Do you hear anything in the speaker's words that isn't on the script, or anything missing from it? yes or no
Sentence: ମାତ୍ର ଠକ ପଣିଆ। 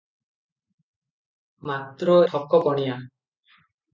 no